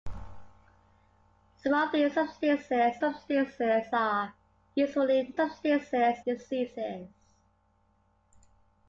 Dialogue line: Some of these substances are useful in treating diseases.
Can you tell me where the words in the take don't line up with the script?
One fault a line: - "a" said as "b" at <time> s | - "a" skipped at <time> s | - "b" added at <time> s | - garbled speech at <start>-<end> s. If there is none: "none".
- "substances" added at 3.0 s
- "treating" said as "substances" at 5.4 s